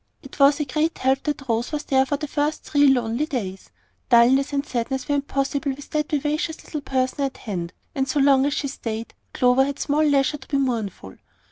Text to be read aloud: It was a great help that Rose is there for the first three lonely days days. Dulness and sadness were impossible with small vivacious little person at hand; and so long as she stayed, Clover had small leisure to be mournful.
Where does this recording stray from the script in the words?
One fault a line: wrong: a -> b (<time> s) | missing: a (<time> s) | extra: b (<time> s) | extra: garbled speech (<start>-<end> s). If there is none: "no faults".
wrong: is -> was (1.7 s)
missing: days (3.7 s)
wrong: small -> that (5.9 s)